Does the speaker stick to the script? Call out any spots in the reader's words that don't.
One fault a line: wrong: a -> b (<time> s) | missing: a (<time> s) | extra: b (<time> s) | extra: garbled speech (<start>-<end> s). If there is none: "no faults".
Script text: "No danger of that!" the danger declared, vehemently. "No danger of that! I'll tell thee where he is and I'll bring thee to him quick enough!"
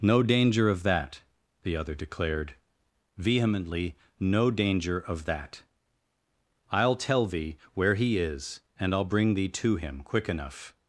wrong: danger -> other (1.8 s)